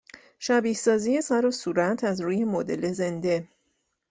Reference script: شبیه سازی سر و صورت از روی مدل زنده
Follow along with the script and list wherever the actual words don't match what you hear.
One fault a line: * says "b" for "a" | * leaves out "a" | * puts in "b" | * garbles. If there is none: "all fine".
all fine